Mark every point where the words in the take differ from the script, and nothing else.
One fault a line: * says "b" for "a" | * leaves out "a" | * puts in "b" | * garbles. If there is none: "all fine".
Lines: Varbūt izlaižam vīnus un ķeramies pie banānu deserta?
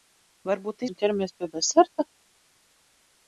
* leaves out "izlaižam vīnus"
* leaves out "banānu"